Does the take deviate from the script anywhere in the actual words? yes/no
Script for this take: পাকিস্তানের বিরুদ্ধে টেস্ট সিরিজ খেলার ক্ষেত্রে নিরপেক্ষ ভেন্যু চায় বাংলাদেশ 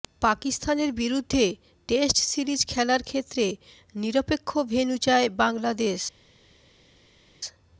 no